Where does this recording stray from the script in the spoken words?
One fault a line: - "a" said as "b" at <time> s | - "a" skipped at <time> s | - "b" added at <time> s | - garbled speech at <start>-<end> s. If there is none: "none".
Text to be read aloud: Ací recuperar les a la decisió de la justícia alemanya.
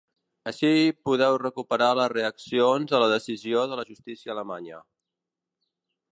- "podeu" added at 1.1 s
- "reaccions" added at 2.1 s